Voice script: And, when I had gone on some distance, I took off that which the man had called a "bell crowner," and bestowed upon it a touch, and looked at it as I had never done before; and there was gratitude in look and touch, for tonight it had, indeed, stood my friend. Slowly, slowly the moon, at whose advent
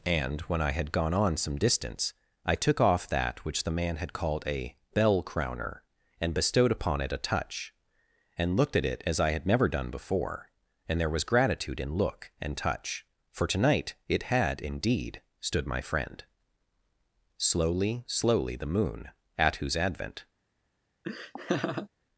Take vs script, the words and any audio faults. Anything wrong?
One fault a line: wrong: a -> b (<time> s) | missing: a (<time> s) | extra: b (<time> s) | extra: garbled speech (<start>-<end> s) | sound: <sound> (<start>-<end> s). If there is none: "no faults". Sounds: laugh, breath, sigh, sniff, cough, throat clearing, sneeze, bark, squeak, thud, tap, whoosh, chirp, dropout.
sound: laugh (21.0-21.9 s)